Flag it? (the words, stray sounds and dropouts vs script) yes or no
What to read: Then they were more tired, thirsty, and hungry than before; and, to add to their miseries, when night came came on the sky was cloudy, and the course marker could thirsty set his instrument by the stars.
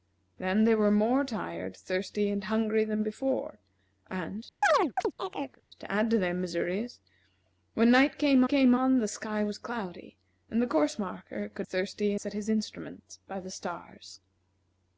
yes